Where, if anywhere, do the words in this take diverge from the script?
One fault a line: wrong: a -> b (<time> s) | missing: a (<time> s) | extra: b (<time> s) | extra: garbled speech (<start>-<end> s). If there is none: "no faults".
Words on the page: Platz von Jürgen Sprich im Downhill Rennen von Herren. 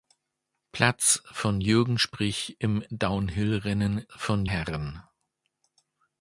no faults